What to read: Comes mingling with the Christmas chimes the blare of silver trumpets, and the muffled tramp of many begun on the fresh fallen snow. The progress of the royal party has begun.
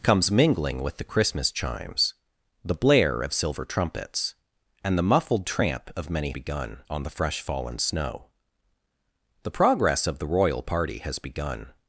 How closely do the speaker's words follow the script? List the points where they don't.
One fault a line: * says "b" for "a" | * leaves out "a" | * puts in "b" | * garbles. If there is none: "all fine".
all fine